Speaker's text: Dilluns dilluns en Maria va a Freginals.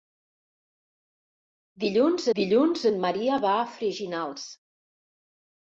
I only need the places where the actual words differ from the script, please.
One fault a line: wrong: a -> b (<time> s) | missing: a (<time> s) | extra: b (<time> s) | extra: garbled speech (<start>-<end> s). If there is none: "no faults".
no faults